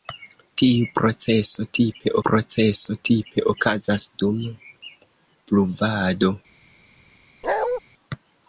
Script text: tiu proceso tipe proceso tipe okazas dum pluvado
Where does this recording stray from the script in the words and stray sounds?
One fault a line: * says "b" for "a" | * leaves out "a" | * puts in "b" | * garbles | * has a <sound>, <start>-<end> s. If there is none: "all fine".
* has a bark, 7.4-7.8 s